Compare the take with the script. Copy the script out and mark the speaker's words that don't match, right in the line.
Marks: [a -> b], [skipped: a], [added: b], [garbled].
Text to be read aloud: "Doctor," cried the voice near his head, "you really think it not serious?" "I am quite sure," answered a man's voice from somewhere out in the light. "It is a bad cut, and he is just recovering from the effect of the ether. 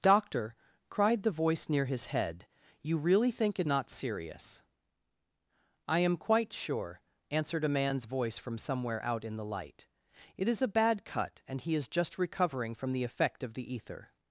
"Doctor," cried the voice near his head, "you really think it not serious?" "I am quite sure," answered a man's voice from somewhere out in the light. "It is a bad cut, and he is just recovering from the effect of the ether.